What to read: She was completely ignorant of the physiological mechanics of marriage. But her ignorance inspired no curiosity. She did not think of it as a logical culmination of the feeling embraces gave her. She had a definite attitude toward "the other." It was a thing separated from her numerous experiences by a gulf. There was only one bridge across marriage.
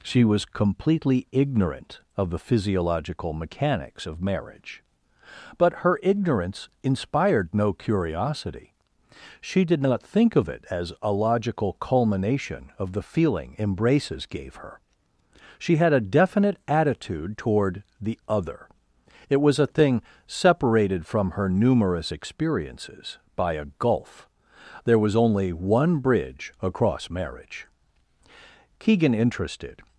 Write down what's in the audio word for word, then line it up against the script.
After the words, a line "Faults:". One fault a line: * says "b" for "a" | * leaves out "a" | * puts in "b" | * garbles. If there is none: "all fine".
She was completely ignorant of the physiological mechanics of marriage. But her ignorance inspired no curiosity. She did not think of it as a logical culmination of the feeling embraces gave her. She had a definite attitude toward "the other." It was a thing separated from her numerous experiences by a gulf. There was only one bridge across marriage. Keegan interested
Faults:
* puts in "Keegan interested"